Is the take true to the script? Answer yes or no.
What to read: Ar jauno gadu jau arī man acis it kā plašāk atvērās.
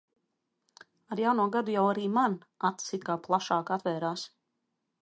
yes